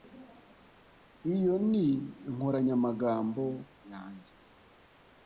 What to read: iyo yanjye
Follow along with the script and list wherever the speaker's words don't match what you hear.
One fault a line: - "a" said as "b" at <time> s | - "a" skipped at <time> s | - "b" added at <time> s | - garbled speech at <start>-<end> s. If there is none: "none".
- "ni inkoranyamagambo" added at 1.7 s